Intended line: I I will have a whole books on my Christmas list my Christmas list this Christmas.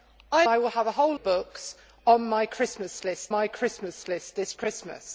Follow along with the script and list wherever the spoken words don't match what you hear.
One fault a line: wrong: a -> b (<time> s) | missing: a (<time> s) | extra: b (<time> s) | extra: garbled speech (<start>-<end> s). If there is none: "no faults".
no faults